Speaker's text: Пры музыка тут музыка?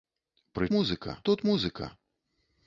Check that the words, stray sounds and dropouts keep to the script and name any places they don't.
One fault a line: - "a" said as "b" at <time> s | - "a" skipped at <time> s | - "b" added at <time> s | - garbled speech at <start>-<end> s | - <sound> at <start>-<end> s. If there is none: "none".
none